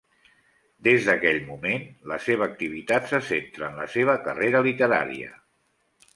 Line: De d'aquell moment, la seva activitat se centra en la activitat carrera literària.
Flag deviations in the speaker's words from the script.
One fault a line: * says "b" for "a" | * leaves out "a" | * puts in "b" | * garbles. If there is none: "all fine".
* says "Des" for "De"
* says "seva" for "activitat"